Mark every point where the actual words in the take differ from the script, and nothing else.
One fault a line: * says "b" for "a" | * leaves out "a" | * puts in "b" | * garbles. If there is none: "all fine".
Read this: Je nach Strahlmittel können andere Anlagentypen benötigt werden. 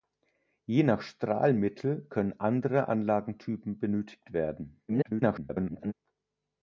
* garbles